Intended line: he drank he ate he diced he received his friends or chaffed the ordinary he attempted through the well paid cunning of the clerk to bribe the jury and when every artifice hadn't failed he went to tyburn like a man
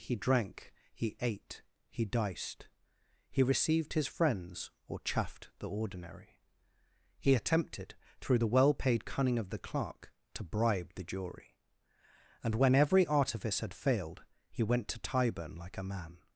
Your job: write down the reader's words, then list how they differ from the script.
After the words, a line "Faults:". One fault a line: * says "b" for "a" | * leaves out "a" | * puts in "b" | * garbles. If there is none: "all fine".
he drank he ate he diced he received his friends or chaffed the ordinary he attempted through the well paid cunning of the clerk to bribe the jury and when every artifice had failed he went to tyburn like a man
Faults:
* says "had" for "hadn't"